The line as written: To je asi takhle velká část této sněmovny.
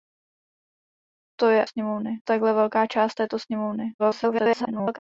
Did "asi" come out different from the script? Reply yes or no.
yes